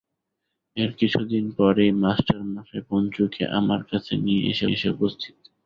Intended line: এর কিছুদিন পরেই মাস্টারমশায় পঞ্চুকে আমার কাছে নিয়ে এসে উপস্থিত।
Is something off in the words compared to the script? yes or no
yes